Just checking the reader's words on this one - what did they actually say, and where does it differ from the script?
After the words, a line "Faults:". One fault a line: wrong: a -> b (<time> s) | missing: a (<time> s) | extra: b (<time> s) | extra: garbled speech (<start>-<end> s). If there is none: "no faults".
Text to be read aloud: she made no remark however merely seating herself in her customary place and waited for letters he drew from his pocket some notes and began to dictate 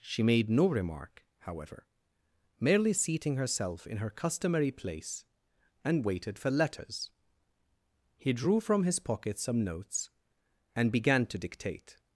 she made no remark however merely seating herself in her customary place and waited for letters he drew from his pocket some notes and began to dictate
Faults:
no faults